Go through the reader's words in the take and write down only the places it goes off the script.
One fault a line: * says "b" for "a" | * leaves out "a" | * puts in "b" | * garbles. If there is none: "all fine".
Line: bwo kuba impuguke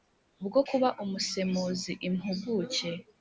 * puts in "umusemuzi"